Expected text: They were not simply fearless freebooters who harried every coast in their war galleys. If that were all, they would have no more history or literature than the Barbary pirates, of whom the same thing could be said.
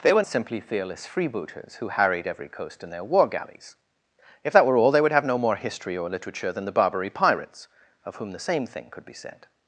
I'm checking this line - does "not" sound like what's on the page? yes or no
no